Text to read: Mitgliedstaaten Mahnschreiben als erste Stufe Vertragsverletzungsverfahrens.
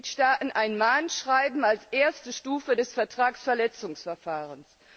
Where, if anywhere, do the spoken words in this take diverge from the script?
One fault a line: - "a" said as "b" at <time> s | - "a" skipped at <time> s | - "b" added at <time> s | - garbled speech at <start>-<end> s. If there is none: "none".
- "ein" added at 0.5 s
- "des" added at 2.8 s